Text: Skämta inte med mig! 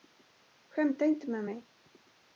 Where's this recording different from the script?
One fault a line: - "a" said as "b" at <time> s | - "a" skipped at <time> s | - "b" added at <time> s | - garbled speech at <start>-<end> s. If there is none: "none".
none